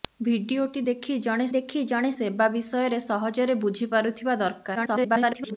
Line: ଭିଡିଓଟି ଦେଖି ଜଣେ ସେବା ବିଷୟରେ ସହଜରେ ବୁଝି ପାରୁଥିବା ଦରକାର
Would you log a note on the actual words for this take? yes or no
yes